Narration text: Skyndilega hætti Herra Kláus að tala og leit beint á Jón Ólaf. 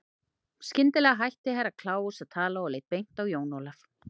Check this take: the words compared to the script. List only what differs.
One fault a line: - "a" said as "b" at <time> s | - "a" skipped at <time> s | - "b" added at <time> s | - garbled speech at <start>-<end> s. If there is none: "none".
none